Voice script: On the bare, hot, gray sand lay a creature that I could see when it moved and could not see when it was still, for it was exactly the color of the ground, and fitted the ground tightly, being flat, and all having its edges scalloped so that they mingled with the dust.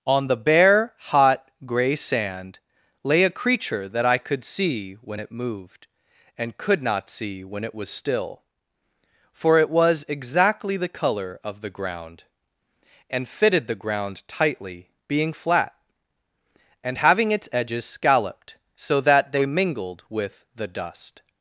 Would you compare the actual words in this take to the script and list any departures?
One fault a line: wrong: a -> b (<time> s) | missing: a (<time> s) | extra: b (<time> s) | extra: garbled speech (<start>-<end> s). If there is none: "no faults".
missing: all (17.0 s)